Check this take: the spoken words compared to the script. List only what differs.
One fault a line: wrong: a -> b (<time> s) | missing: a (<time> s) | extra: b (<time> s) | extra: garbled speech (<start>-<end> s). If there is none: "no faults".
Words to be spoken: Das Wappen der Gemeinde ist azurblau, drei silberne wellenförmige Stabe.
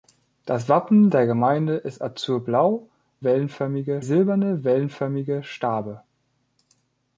wrong: drei -> wellenförmige (3.2 s)